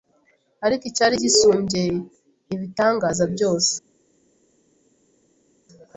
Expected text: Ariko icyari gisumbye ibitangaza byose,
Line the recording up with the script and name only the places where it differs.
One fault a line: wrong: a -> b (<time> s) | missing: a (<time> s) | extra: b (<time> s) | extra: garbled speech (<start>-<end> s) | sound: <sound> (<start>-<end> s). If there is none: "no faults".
no faults